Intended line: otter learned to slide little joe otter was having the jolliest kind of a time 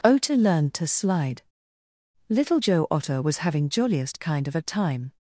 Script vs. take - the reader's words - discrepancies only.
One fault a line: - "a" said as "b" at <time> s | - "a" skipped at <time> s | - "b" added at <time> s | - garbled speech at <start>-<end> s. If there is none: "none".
- "the" skipped at 3.7 s